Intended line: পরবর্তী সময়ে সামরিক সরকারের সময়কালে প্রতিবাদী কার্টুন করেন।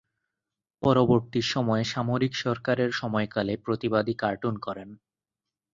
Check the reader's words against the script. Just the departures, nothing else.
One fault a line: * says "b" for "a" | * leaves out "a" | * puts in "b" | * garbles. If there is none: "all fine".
all fine